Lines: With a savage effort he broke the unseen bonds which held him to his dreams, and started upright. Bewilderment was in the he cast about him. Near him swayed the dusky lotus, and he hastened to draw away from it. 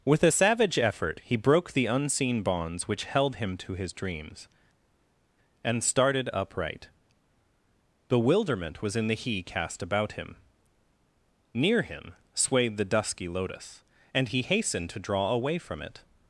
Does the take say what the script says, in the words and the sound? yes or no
yes